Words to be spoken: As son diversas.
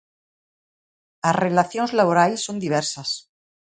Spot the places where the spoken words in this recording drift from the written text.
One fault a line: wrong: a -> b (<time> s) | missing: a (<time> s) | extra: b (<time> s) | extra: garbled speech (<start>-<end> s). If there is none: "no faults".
extra: relacións laborais (1.4 s)